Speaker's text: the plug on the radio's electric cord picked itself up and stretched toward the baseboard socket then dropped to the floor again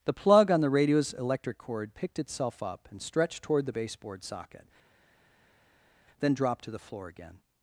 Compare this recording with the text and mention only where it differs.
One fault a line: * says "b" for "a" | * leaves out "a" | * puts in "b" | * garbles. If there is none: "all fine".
all fine